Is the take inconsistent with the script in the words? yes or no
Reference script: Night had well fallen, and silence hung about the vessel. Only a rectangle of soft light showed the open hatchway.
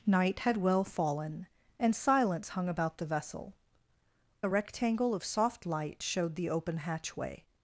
yes